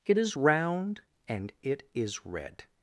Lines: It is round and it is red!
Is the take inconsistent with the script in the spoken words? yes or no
no